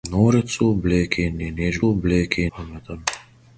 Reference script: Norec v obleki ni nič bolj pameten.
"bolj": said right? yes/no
no